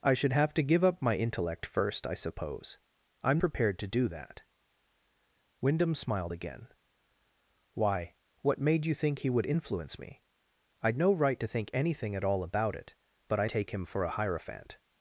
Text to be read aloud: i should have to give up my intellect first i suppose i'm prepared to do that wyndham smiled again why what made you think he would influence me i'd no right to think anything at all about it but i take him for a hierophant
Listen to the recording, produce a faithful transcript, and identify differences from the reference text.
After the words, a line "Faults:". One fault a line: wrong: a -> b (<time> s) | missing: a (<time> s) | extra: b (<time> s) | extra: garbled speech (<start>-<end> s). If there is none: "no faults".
i should have to give up my intellect first i suppose i'm prepared to do that wyndham smiled again why what made you think he would influence me i'd no right to think anything at all about it but i take him for a hierophant
Faults:
no faults